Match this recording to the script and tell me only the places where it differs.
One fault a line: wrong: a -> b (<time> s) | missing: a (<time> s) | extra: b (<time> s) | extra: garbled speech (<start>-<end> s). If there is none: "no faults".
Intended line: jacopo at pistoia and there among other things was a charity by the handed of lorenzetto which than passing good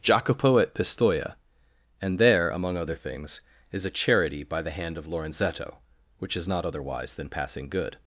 wrong: was -> is (3.7 s)
wrong: handed -> hand (4.7 s)
extra: is not otherwise (6.3 s)